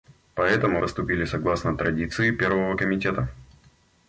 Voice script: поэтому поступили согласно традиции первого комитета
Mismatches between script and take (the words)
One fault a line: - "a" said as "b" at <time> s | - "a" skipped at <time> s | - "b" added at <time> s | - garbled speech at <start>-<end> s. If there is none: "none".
none